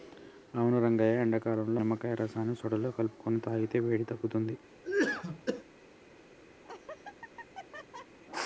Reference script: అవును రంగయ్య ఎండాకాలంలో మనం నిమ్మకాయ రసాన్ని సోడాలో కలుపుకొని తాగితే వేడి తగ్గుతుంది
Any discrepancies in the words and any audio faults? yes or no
yes